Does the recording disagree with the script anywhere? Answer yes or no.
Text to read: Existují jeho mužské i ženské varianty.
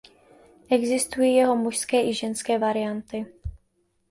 no